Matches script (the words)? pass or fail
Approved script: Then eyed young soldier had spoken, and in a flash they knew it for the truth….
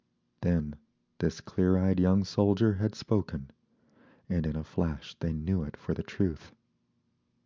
fail